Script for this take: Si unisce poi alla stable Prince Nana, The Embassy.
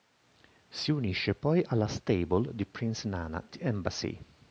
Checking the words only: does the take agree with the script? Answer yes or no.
no